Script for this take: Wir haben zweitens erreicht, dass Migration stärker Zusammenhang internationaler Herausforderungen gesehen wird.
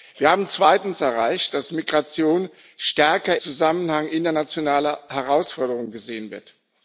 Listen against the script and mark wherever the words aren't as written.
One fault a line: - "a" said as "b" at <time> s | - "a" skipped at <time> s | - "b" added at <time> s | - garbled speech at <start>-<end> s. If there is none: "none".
none